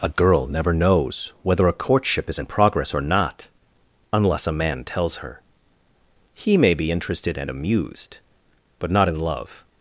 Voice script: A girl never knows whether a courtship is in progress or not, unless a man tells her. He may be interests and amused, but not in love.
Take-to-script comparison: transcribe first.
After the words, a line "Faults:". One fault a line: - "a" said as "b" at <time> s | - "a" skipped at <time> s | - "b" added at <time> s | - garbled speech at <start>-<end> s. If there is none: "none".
A girl never knows whether a courtship is in progress or not, unless a man tells her. He may be interested and amused, but not in love.
Faults:
- "interests" said as "interested" at 6.9 s